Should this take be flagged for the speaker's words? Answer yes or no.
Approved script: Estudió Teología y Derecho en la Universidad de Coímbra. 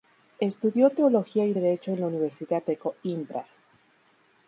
no